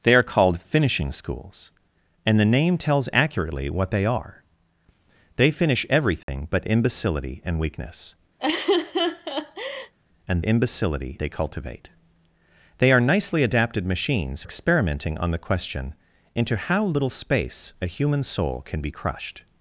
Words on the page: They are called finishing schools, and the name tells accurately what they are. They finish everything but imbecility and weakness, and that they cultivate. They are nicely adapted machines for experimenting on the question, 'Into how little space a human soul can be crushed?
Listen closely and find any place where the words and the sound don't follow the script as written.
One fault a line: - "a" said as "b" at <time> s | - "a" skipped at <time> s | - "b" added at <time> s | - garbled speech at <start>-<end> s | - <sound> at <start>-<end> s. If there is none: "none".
- dropout at 6.2-6.3 s
- laugh at 8.4-9.9 s
- "that" said as "imbecility" at 10.4 s
- "for" skipped at 14.4 s